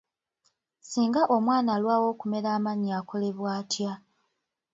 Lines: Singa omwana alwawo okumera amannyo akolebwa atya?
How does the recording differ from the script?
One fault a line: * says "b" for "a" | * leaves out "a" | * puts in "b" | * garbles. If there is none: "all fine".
all fine